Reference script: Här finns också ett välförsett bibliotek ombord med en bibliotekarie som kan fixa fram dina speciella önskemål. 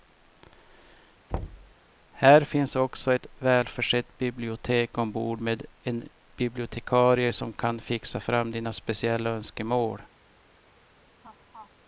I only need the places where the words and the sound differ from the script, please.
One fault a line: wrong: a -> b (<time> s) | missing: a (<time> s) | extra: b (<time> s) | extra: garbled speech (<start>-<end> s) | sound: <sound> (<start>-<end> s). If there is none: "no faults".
sound: thud (1.3-1.7 s)
sound: laugh (11.2-11.7 s)